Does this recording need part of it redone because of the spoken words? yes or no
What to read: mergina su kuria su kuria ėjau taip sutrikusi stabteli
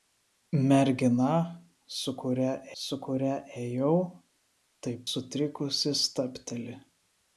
no